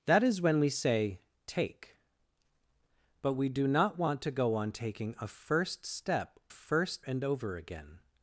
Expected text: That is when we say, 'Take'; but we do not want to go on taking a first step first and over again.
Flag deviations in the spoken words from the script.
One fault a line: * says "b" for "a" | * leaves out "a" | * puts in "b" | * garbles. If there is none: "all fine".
all fine